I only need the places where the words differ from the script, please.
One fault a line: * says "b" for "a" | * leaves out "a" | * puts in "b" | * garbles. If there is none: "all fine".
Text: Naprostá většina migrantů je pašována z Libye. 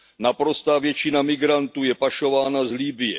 all fine